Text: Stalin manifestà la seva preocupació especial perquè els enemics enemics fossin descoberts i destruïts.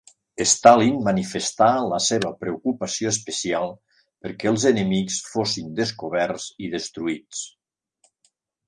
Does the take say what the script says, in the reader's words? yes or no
no